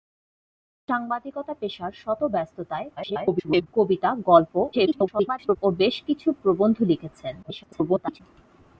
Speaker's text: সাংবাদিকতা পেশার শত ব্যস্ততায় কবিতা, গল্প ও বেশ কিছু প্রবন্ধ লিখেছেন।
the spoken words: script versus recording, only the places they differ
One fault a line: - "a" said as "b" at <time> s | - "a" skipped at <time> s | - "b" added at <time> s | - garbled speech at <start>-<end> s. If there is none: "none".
- garbled speech at 3.0-3.7 s
- garbled speech at 4.7-5.6 s
- garbled speech at 7.4-8.2 s